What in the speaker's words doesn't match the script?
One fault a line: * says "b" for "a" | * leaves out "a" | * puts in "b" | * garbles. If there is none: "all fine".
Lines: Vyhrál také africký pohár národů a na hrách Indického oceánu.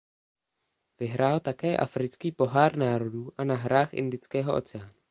all fine